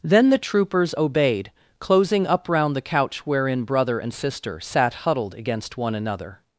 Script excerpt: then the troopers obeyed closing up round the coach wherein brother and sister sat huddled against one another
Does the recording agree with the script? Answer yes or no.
no